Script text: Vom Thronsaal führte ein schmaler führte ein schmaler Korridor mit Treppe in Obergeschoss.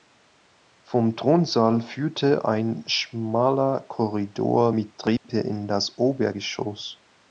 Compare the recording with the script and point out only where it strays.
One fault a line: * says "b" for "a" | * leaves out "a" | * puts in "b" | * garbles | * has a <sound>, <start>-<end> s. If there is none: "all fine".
* leaves out "führte ein schmaler"
* has a dropout, 5.2-5.2 s
* puts in "das"